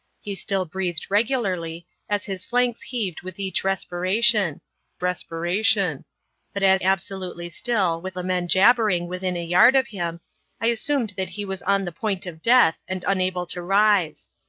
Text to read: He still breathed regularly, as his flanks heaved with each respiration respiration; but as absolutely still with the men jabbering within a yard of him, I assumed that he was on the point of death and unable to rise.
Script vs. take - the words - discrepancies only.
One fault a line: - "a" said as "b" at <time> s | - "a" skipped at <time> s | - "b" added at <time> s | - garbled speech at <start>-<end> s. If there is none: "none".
none